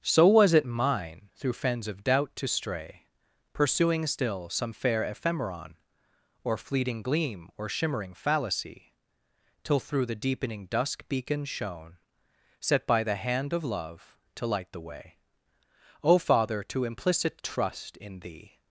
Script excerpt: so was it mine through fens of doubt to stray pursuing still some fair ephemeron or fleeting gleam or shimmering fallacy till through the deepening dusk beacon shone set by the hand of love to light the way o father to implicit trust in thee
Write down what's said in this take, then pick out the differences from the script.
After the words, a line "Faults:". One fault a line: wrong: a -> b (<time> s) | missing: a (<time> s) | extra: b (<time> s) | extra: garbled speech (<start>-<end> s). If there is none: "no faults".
so was it mine through fens of doubt to stray pursuing still some fair ephemeron or fleeting gleam or shimmering fallacy till through the deepening dusk beacon shone set by the hand of love to light the way o father to implicit trust in thee
Faults:
no faults